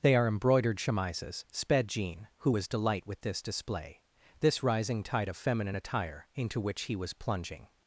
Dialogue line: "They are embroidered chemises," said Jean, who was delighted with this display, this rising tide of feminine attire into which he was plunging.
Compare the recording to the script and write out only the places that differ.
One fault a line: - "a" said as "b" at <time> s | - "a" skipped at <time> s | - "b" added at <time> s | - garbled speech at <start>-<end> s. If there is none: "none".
- "said" said as "sped" at 1.5 s
- "delighted" said as "delight" at 2.7 s